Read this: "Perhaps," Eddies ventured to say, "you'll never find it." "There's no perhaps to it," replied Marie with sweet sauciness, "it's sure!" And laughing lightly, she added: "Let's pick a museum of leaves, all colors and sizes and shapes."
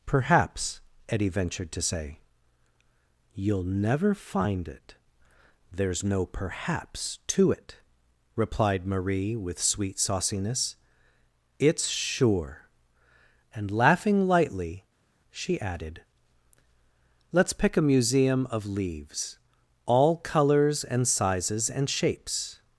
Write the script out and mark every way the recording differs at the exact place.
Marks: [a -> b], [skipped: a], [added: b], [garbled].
"Perhaps," [Eddies -> Eddie] ventured to say, "you'll never find it." "There's no perhaps to it," replied Marie with sweet sauciness, "it's sure!" And laughing lightly, she added: "Let's pick a museum of leaves, all colors and sizes and shapes."